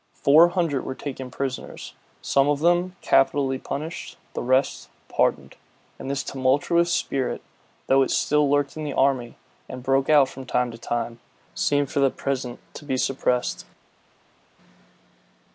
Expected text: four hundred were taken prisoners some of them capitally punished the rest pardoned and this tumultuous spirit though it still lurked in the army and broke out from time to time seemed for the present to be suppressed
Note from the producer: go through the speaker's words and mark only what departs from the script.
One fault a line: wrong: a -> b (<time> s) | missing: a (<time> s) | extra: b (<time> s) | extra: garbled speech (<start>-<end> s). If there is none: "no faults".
no faults